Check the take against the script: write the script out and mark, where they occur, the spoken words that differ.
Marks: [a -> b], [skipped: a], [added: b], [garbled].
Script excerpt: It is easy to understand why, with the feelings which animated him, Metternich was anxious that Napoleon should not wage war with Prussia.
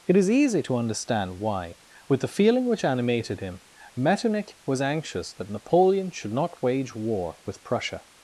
It is easy to understand why, with the [feelings -> feeling] which animated him, Metternich was anxious that Napoleon should not wage war with Prussia.